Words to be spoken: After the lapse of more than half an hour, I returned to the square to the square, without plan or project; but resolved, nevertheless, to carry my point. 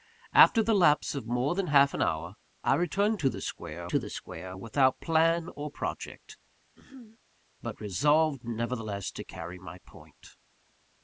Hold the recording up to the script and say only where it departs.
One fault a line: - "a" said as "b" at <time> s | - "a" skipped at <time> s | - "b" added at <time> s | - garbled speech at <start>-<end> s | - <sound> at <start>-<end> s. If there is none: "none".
- throat clearing at 6.8-7.2 s